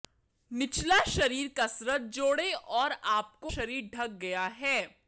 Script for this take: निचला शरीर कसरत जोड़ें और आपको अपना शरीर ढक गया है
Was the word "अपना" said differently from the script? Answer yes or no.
yes